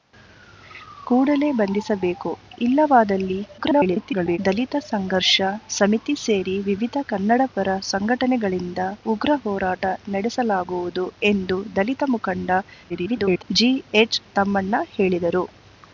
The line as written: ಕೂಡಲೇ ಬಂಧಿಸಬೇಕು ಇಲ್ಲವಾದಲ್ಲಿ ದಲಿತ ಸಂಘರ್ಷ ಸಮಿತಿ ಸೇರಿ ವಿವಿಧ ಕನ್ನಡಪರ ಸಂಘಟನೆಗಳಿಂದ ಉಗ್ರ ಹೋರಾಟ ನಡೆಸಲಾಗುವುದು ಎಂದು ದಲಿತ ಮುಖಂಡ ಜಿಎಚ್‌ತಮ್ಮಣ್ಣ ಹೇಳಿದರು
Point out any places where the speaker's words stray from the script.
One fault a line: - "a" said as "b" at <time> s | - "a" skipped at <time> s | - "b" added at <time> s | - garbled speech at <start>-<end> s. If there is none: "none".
- garbled speech at 3.6-4.4 s
- garbled speech at 12.9-13.4 s